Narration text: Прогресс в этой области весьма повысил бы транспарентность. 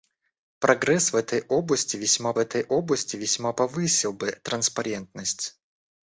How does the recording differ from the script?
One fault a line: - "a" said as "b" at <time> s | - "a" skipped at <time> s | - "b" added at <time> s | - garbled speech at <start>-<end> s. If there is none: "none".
- "этой области весьма" added at 2.4 s